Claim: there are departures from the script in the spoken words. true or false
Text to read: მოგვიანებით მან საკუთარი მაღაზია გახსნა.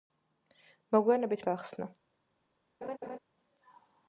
true